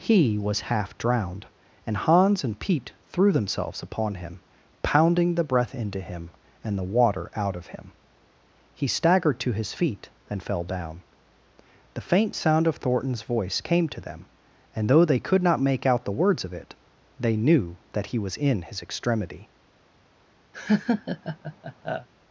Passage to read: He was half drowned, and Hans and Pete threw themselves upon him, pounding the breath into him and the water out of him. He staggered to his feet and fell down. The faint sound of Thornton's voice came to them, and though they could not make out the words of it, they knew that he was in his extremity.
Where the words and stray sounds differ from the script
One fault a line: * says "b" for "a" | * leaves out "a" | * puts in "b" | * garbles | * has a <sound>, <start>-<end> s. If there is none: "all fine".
* has a laugh, 20.5-22.1 s